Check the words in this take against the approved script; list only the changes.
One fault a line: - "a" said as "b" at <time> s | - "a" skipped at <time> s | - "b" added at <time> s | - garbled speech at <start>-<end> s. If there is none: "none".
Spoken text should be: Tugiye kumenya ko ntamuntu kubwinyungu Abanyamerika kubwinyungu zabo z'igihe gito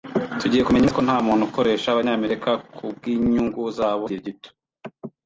- "neza" added at 0.8 s
- "kubwinyungu" said as "ukoresha" at 1.5 s